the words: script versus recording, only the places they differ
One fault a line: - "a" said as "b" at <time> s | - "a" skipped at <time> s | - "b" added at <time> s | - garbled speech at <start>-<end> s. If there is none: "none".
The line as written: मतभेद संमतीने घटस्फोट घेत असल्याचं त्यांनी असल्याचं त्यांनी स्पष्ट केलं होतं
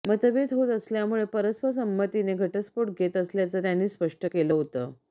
- "होत असल्यामुळे परस्पर" added at 0.5 s
- "असल्याचं त्यांनी" skipped at 3.9 s